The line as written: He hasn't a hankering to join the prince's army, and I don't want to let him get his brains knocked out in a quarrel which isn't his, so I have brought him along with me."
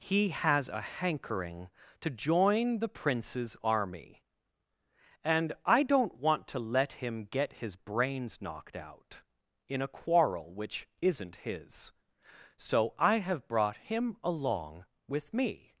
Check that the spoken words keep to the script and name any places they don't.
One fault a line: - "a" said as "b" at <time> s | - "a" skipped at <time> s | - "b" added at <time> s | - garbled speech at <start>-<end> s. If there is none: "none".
- "hasn't" said as "has" at 0.3 s